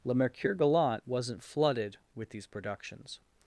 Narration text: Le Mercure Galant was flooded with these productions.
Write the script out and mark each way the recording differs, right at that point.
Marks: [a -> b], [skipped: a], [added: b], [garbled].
Le Mercure Galant [was -> wasn't] flooded with these productions.